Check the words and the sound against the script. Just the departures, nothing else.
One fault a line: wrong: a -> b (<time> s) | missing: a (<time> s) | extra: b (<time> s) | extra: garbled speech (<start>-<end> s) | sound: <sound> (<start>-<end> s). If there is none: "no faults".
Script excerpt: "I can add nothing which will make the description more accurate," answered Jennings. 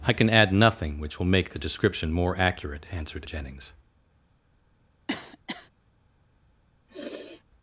sound: cough (5.1-5.7 s)
sound: sniff (6.9-7.4 s)